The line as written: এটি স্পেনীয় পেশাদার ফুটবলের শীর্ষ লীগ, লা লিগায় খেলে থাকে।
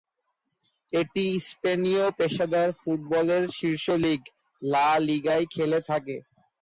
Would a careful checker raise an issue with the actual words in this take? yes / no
no